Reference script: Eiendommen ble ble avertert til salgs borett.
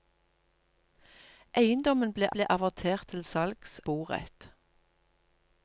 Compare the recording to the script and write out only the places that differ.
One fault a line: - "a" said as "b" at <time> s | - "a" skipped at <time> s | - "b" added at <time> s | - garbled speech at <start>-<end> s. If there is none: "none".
none